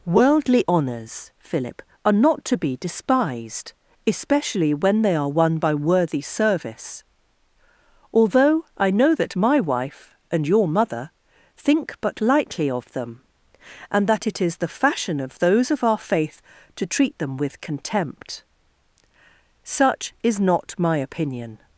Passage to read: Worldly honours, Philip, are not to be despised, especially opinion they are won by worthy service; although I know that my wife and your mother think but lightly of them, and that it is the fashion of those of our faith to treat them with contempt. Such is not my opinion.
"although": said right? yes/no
yes